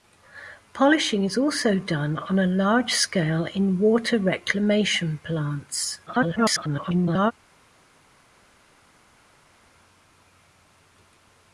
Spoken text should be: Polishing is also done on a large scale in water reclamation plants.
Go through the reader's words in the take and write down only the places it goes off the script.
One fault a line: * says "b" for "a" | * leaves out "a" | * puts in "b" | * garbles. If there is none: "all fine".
* garbles